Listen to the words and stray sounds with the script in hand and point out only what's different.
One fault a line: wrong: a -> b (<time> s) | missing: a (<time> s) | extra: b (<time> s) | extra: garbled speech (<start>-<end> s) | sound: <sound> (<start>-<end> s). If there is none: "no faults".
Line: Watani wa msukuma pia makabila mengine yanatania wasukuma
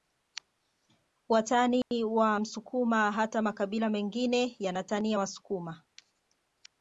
sound: dropout (1.8-1.9 s)
wrong: pia -> hata (3.1 s)